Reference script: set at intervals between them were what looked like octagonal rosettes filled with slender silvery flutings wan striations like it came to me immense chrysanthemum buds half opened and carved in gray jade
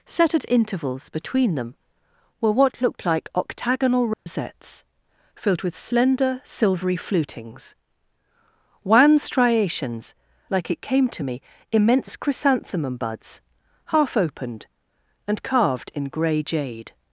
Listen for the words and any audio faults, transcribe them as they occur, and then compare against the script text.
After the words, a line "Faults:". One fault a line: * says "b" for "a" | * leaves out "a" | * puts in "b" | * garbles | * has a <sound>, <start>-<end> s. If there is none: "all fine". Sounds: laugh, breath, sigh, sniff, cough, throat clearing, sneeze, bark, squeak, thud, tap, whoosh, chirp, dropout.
set at intervals between them were what looked like octagonal rosettes filled with slender silvery flutings wan striations like it came to me immense chrysanthemum buds half opened and carved in gray jade
Faults:
* has a dropout, 4.1-4.3 s